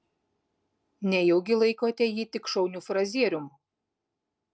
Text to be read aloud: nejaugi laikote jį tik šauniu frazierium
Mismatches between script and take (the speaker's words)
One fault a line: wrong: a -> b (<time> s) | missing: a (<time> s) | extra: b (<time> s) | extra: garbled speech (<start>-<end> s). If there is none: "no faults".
no faults